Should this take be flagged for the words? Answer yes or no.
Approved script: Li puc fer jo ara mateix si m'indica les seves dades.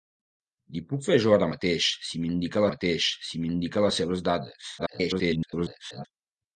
yes